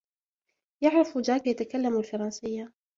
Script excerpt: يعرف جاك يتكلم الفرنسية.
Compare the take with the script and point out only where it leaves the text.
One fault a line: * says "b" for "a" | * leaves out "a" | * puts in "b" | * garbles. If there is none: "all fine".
all fine